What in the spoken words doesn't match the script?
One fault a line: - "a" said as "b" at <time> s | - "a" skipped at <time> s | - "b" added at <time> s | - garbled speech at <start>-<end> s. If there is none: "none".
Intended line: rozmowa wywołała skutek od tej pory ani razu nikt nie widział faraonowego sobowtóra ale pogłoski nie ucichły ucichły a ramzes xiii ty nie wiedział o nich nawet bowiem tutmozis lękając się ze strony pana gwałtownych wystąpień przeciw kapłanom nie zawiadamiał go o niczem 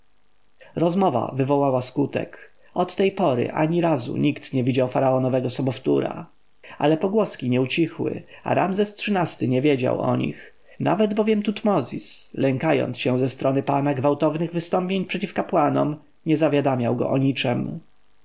- "ucichły" skipped at 8.2 s